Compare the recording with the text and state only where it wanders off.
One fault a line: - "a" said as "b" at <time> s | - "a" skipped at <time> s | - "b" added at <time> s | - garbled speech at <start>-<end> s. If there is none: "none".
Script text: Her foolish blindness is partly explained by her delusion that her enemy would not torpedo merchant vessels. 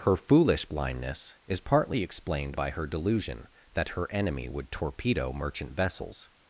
- "not" skipped at 4.7 s